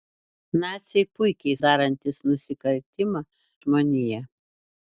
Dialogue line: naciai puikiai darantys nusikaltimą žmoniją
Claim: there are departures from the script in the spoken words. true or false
false